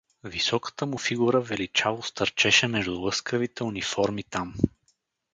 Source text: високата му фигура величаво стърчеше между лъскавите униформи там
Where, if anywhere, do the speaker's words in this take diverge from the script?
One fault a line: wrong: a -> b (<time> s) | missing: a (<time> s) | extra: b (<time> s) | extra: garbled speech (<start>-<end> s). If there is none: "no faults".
no faults